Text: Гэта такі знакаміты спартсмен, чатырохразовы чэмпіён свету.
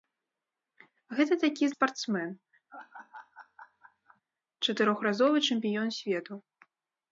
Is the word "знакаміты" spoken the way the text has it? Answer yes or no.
no